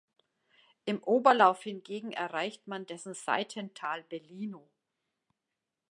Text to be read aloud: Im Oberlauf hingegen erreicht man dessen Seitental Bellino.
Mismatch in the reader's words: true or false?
false